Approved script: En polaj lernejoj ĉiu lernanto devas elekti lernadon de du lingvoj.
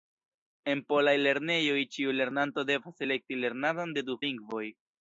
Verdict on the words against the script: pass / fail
pass